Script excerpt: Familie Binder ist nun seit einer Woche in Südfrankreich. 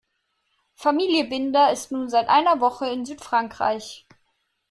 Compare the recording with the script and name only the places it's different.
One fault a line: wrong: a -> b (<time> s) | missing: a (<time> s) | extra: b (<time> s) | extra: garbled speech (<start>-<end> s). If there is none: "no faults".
no faults